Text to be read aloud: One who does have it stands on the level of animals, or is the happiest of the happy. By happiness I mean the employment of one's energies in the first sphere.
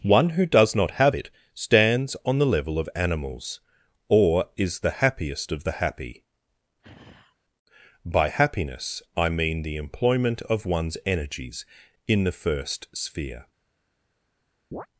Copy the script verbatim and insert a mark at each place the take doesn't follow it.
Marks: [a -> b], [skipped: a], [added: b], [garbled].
One who does [added: not] have it stands on the level of animals, or is the happiest of the happy. By happiness I mean the employment of one's energies in the first sphere.